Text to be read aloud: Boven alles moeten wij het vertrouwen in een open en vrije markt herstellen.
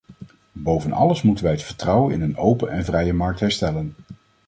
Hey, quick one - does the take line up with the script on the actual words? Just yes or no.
yes